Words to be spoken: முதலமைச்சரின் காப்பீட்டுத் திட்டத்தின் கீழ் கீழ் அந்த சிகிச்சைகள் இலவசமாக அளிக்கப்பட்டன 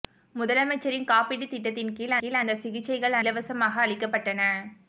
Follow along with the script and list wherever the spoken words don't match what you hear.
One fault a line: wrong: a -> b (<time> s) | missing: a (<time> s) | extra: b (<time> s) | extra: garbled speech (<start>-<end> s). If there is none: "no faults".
no faults